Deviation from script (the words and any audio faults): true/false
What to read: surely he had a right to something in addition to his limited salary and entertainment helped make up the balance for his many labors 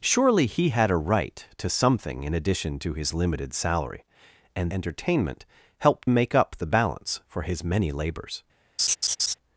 true